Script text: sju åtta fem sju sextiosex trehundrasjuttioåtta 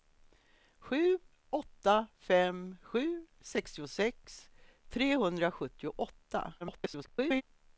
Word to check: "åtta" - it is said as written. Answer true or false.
true